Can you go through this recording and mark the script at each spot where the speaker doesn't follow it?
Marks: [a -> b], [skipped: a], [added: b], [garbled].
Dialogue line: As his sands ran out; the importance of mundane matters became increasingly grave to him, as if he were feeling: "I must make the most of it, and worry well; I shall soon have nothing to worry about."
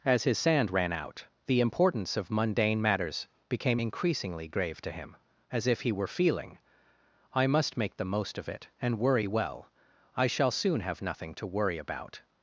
As his [sands -> sand] ran out; the importance of mundane matters became increasingly grave to him, as if he were feeling: "I must make the most of it, and worry well; I shall soon have nothing to worry about."